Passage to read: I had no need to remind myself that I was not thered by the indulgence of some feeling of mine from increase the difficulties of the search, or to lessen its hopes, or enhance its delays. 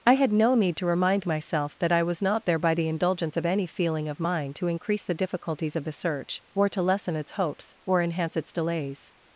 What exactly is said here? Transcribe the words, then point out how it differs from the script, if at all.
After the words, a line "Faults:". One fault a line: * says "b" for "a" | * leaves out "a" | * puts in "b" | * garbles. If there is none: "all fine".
I had no need to remind myself that I was not there by the indulgence of any feeling of mine to increase the difficulties of the search, or to lessen its hopes, or enhance its delays.
Faults:
* says "there" for "thered"
* says "any" for "some"
* says "to" for "from"